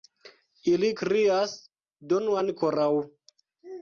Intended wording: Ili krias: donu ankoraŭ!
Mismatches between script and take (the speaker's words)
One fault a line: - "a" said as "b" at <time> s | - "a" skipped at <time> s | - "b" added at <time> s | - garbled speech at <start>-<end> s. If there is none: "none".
none